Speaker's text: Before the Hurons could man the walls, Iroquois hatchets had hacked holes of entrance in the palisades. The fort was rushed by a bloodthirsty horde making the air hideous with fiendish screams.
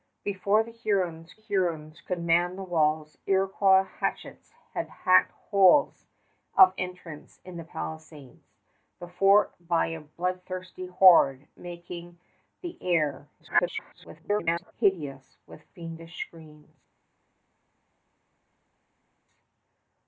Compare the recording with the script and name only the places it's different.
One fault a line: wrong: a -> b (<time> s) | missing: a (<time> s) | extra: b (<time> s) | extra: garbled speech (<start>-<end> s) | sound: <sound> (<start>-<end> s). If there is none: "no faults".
extra: Hurons (1.3 s)
missing: was rushed (9.5 s)
extra: garbled speech (13.4-14.7 s)